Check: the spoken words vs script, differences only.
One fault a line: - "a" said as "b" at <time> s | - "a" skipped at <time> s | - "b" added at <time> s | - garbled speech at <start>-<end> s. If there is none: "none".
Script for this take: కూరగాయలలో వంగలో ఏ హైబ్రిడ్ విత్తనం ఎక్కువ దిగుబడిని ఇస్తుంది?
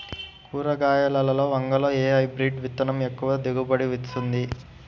none